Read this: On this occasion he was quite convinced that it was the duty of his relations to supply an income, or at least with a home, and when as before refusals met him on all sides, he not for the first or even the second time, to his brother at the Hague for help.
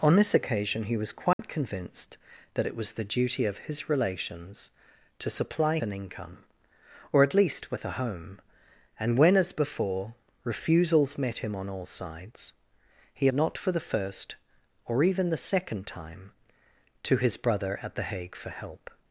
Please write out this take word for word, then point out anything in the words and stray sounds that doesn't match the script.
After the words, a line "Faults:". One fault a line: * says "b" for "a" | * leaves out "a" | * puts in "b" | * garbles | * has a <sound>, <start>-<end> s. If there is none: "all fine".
On this occasion he was quite convinced that it was the duty of his relations to supply an income, or at least with a home, and when as before refusals met him on all sides, he not for the first or even the second time, to his brother at the Hague for help.
Faults:
* has a dropout, 1.3-1.4 s